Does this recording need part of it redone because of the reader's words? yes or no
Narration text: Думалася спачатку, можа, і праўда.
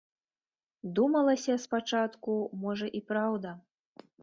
no